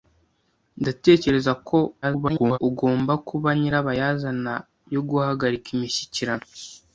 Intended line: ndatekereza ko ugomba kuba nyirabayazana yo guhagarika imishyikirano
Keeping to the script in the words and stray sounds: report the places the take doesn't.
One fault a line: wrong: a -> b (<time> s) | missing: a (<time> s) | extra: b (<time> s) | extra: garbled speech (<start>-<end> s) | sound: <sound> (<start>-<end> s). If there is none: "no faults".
extra: garbled speech (2.0-2.6 s)